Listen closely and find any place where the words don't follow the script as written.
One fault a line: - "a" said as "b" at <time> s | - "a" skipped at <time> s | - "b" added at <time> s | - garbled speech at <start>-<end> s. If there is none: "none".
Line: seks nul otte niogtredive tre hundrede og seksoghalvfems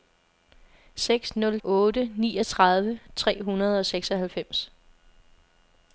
none